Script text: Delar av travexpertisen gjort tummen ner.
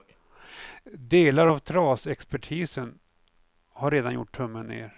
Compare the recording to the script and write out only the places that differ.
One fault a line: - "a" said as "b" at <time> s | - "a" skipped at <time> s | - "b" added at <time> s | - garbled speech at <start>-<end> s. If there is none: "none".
- "har redan" added at 3.7 s